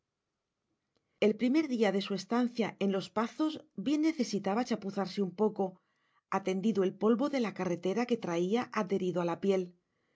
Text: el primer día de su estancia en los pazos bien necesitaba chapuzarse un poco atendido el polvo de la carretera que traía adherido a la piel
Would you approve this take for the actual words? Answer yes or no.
yes